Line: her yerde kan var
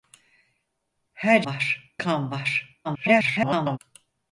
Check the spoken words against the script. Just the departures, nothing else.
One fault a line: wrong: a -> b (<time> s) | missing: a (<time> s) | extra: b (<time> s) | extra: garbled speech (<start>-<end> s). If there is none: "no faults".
wrong: yerde -> var (1.5 s)
extra: garbled speech (2.8-3.8 s)